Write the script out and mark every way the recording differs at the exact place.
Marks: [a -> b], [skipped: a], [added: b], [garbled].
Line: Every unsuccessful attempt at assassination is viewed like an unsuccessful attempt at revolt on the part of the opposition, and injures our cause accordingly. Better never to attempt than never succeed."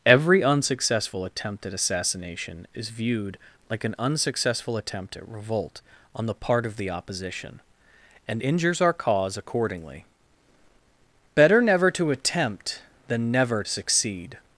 Every unsuccessful attempt at assassination is viewed like an unsuccessful attempt at revolt on the part of the opposition, and injures our cause accordingly. Better never to attempt than never succeed."